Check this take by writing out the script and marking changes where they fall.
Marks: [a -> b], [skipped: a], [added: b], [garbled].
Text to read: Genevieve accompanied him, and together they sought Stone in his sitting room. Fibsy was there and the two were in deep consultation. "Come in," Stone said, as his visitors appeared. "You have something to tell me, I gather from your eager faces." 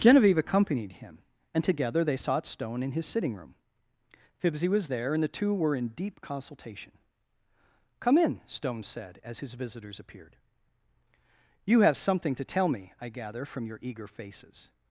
Genevieve accompanied him, and together they sought Stone in his sitting room. Fibsy was there and the two were in deep consultation. "Come in," Stone said, as his visitors appeared. "You have something to tell me, I gather from your eager faces."